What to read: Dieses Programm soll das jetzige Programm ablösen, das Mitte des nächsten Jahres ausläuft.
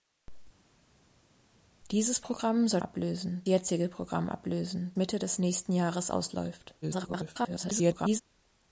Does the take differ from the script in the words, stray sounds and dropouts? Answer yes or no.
yes